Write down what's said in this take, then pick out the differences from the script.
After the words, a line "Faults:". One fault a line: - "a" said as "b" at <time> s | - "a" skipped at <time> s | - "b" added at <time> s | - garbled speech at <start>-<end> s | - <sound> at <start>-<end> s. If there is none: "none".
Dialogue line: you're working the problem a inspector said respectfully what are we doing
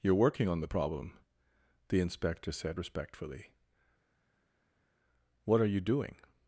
you're working on the problem the inspector said respectfully what are you doing
Faults:
- "on" added at 0.5 s
- "a" said as "the" at 1.9 s
- "we" said as "you" at 5.7 s